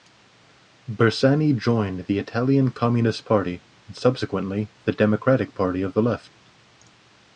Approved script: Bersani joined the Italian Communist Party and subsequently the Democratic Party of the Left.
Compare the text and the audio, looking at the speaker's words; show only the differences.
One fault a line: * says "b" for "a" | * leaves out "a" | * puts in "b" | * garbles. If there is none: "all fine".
all fine